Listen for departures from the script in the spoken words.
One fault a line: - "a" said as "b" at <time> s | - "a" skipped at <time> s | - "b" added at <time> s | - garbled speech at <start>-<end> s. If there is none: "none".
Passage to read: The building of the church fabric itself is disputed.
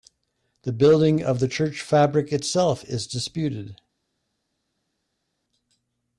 none